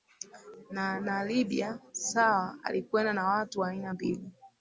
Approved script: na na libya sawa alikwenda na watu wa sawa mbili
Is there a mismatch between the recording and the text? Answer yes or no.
yes